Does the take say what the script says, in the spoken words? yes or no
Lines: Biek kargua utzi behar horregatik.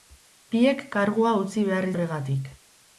yes